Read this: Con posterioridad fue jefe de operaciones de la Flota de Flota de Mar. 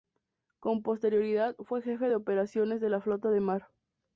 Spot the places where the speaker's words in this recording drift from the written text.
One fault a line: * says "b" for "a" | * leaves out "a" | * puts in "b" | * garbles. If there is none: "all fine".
* leaves out "Flota de"